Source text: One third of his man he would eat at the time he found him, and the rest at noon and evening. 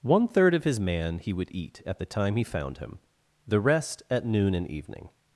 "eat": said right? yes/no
yes